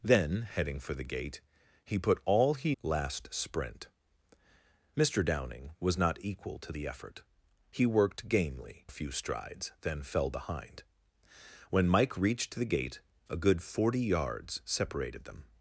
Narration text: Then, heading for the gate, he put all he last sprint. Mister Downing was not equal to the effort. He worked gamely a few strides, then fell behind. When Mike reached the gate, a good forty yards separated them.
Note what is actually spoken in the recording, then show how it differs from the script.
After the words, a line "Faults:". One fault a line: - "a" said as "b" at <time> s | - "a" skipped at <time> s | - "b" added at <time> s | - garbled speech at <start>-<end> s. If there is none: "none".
Then, heading for the gate, he put all he last sprint. Mister Downing was not equal to the effort. He worked gamely a few strides, then fell behind. When Mike reached the gate, a good forty yards separated them.
Faults:
none